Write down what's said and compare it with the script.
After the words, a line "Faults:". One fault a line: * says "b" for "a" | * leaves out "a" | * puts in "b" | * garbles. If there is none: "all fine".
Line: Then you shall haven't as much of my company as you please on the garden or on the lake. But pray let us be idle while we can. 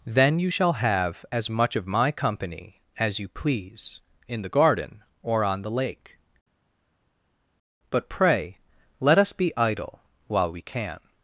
Then you shall have as much of my company as you please in the garden or on the lake. But pray let us be idle while we can.
Faults:
* says "have" for "haven't"
* says "in" for "on"